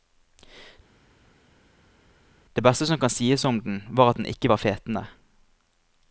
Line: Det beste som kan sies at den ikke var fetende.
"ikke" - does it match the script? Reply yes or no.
yes